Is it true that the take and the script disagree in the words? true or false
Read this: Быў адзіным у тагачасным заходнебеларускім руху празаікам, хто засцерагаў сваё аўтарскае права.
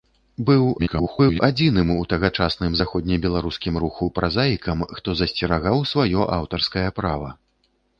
true